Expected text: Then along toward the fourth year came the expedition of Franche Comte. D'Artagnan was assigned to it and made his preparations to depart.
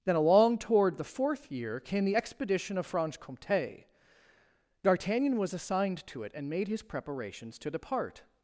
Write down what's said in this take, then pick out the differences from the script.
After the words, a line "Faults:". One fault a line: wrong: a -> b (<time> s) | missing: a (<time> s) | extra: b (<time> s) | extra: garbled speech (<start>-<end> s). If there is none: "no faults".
Then along toward the fourth year came the expedition of Franche Comte. D'Artagnan was assigned to it and made his preparations to depart.
Faults:
no faults